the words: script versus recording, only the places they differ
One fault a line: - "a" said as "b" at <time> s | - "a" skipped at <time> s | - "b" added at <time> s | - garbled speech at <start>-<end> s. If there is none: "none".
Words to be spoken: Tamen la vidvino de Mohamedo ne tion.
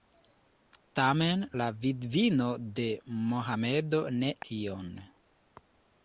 none